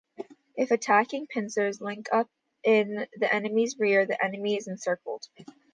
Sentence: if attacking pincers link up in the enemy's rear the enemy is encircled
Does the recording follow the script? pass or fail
pass